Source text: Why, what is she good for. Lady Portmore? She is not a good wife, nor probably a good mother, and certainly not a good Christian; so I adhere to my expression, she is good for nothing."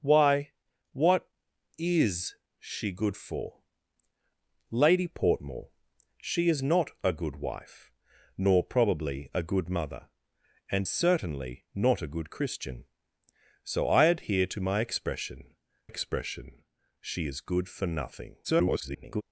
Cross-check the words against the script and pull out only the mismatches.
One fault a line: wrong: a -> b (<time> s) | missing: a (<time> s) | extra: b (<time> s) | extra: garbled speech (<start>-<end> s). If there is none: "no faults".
extra: expression (15.9 s)
extra: garbled speech (18.4-19.2 s)